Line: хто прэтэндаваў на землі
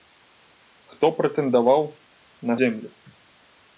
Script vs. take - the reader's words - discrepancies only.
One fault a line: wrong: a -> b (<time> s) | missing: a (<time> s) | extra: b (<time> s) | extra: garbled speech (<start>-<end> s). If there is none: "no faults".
no faults